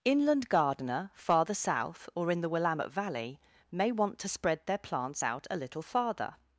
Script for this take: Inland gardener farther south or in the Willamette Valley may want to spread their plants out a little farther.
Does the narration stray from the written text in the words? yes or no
no